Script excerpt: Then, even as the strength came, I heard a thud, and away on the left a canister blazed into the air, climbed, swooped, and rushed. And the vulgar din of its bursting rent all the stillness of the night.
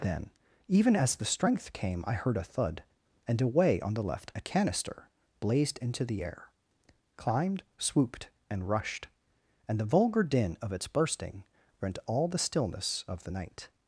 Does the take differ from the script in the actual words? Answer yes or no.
no